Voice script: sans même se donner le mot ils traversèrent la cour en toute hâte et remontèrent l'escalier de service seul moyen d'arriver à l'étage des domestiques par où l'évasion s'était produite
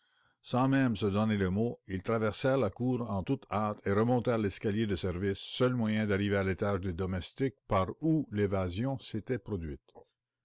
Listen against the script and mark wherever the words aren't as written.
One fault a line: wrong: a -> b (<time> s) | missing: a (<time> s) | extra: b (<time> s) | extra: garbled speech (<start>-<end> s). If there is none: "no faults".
no faults